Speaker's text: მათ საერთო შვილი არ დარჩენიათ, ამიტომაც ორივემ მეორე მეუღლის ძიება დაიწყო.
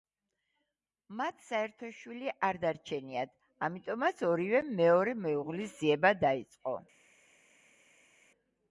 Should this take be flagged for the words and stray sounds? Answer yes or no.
no